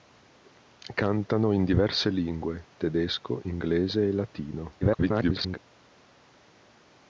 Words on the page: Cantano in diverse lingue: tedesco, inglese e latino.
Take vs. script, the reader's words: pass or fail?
fail